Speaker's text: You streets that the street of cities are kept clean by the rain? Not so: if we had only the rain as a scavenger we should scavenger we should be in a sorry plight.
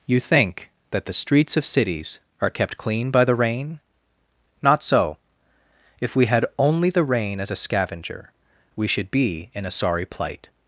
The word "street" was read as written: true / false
false